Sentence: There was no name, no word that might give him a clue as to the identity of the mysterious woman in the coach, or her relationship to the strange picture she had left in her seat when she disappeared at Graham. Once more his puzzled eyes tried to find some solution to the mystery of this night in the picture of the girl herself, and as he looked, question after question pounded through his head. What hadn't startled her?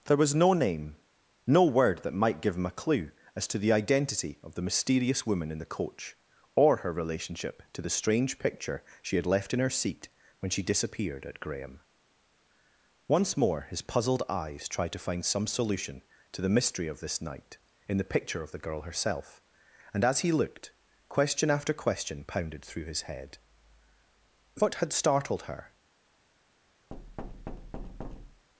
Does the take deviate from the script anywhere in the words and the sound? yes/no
yes